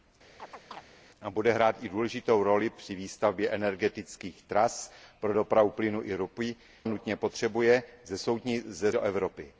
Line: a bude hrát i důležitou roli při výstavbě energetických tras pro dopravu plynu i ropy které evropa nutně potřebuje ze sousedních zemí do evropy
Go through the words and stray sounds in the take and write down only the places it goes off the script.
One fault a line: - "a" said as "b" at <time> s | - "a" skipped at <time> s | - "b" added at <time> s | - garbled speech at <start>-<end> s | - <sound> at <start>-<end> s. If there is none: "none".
- chirp at 0.4-0.8 s
- "které evropa" skipped at 6.5 s
- "sousedních zemí" skipped at 8.9 s